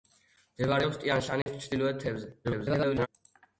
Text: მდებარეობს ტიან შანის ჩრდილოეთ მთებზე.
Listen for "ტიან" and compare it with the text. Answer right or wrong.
right